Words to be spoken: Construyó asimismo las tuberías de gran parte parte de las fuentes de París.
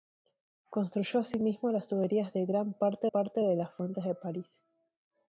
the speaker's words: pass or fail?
pass